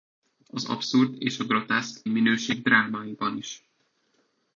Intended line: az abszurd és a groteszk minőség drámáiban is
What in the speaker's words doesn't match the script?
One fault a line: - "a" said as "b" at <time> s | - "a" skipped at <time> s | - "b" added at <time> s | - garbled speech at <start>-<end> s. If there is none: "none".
none